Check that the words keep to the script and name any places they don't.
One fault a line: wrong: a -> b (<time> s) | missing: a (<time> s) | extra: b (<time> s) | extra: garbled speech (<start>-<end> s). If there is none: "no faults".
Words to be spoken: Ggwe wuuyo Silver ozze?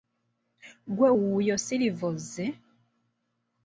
no faults